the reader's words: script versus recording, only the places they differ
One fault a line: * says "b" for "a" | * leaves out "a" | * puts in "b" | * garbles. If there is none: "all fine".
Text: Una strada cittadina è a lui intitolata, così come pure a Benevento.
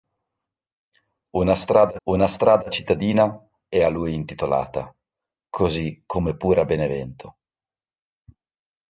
* puts in "una strada"